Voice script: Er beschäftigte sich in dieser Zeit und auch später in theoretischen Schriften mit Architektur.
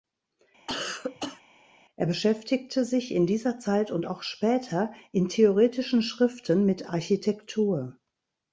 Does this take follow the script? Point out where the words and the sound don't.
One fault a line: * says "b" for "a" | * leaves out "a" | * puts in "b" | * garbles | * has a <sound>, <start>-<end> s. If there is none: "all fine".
* has a cough, 0.7-1.4 s